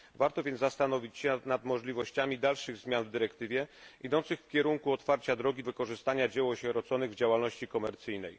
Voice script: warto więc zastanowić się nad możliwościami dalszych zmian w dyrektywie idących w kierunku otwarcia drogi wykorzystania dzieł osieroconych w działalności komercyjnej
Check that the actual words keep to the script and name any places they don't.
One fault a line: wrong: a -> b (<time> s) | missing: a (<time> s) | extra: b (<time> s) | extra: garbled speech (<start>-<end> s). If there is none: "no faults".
no faults